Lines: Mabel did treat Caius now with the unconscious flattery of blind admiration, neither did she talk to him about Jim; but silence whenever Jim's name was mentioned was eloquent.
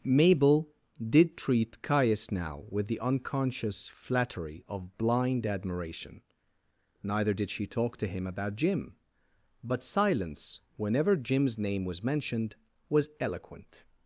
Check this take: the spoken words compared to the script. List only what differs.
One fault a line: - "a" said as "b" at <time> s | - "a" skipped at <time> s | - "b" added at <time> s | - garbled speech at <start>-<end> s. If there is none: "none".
none